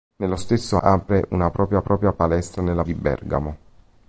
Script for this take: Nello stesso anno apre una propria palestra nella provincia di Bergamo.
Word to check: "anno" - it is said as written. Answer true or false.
false